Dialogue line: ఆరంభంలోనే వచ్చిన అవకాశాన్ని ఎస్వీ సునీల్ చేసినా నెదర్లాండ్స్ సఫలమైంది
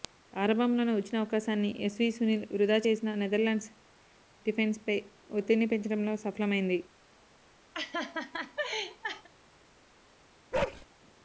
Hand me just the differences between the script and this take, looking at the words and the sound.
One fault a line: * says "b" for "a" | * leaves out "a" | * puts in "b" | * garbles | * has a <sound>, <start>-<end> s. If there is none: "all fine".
* puts in "వృథా"
* puts in "డిఫెన్స్పై ఒత్తిడిని పెంచడంలో"
* has a laugh, 7.7-9.3 s
* has a bark, 10.5-10.9 s